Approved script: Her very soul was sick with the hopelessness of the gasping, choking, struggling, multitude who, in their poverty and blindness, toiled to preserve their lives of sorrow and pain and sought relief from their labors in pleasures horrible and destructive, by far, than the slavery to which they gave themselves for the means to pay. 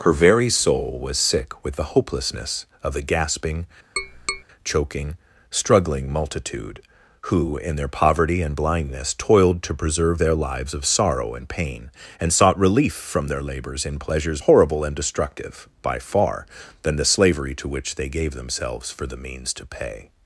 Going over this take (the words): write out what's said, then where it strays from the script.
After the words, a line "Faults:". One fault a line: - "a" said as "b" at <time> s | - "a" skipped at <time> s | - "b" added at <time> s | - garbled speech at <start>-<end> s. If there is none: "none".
Her very soul was sick with the hopelessness of the gasping, choking, struggling, multitude who, in their poverty and blindness, toiled to preserve their lives of sorrow and pain and sought relief from their labors in pleasures horrible and destructive, by far, than the slavery to which they gave themselves for the means to pay.
Faults:
none